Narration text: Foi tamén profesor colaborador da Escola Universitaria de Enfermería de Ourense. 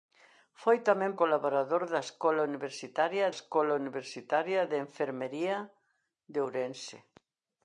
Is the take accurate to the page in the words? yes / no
no